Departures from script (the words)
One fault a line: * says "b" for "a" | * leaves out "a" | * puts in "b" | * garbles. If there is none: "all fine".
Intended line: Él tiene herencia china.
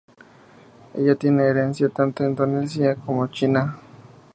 * says "Ella" for "Él"
* puts in "tanto indonesia como"